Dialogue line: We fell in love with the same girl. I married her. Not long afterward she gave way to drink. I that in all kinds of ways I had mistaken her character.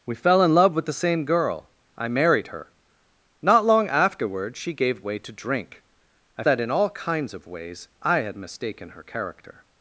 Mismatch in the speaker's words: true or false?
false